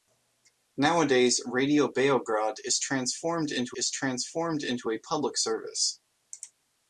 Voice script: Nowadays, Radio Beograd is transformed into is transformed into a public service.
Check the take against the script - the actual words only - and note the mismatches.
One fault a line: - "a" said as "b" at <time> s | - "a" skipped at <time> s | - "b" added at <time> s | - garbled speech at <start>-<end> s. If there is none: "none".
none